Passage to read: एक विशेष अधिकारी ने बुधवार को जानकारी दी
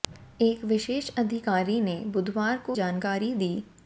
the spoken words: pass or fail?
pass